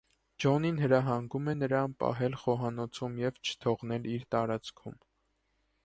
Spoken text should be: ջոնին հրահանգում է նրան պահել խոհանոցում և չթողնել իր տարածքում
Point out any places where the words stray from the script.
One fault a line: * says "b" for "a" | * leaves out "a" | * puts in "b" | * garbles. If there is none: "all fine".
all fine